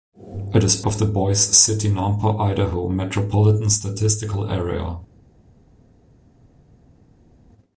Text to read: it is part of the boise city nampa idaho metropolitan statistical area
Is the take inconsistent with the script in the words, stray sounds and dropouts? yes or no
yes